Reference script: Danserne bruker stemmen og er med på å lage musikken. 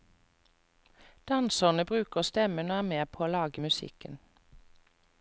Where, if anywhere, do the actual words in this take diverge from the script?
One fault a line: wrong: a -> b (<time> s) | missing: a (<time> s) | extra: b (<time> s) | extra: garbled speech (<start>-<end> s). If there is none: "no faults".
no faults